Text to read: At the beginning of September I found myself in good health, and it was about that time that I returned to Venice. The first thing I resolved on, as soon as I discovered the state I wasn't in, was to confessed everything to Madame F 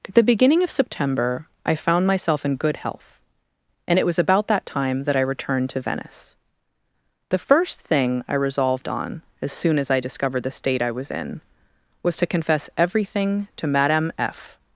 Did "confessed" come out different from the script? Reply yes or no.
yes